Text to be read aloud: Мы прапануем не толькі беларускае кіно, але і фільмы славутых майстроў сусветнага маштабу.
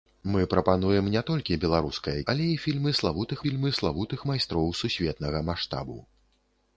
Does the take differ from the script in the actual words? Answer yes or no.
yes